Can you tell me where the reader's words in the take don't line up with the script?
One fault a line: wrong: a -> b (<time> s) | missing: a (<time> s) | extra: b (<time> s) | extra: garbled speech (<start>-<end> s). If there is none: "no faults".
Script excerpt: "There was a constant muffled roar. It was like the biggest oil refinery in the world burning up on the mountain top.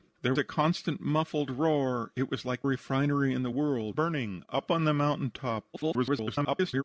missing: was (0.3 s)
missing: the biggest oil (2.7 s)
extra: garbled speech (5.7-6.8 s)